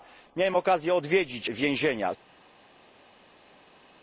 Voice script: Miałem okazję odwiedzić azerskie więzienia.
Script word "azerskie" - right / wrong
wrong